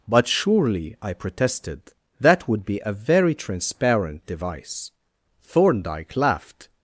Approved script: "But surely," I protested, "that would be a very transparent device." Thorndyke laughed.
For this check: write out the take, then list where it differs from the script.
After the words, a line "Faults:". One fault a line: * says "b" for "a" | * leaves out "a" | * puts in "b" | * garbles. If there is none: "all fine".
"But surely," I protested, "that would be a very transparent device." Thorndyke laughed.
Faults:
all fine